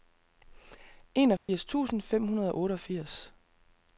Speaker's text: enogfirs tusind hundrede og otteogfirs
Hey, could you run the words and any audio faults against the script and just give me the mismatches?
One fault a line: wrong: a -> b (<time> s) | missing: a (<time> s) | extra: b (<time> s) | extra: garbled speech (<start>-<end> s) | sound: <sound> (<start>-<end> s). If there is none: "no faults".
sound: dropout (1.4-1.5 s)
extra: fem (2.0 s)